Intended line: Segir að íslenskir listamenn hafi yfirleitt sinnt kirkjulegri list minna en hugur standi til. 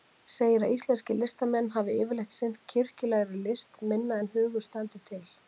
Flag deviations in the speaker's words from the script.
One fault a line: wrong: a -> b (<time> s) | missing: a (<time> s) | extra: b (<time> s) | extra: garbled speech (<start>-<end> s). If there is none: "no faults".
no faults